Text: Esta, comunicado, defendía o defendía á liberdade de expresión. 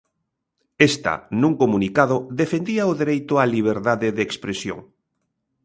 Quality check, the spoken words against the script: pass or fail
fail